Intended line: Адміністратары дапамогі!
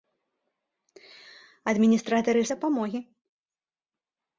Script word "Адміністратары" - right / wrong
right